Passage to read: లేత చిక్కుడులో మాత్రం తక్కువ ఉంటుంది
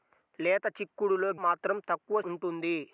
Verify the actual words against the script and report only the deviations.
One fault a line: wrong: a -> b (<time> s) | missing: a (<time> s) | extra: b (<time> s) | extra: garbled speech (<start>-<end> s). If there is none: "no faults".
no faults